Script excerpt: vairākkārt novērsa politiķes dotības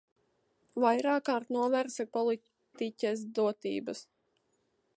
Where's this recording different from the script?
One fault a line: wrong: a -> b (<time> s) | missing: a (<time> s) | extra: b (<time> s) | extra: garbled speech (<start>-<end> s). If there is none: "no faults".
no faults